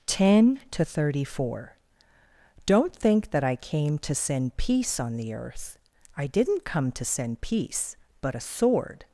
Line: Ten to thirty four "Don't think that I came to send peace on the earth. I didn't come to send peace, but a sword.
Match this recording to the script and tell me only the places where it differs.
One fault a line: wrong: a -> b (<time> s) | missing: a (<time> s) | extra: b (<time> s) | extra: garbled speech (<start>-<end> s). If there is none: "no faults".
no faults